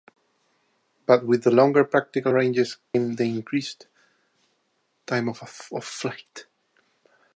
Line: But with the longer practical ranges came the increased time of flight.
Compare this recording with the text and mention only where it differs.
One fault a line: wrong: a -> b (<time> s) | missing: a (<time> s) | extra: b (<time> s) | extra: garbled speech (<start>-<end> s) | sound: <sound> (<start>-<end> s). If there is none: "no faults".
sound: dropout (2.8-2.9 s)